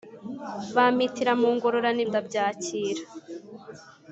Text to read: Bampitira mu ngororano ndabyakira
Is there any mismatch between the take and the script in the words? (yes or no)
no